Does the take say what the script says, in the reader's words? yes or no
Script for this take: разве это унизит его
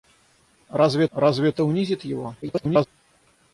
no